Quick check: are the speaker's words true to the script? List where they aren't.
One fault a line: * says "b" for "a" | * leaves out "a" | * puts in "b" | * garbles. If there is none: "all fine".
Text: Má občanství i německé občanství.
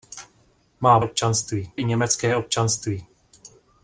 all fine